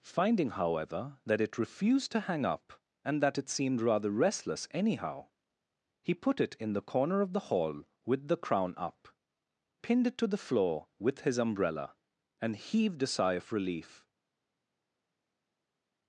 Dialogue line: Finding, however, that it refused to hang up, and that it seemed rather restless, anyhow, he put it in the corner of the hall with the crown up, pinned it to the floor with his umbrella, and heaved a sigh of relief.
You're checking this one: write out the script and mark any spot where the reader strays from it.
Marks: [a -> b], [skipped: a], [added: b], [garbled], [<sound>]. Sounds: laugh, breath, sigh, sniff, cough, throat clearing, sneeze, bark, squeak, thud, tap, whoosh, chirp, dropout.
Finding, however, that it refused to hang up, and that it seemed rather restless, anyhow, he put it in the corner of the hall with the crown up, pinned it to the floor with his umbrella, and heaved a sigh of relief.